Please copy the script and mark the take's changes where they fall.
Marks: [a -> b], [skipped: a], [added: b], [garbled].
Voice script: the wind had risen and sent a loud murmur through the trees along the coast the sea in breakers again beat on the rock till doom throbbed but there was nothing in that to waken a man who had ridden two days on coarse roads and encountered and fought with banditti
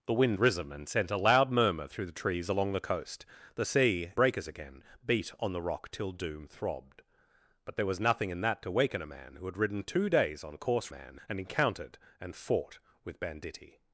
the wind [skipped: had] risen and sent a loud murmur through the trees along the coast the sea [skipped: in] breakers again beat on the rock till doom throbbed but there was nothing in that to waken a man who had ridden two days on coarse [roads -> man] and encountered and fought with banditti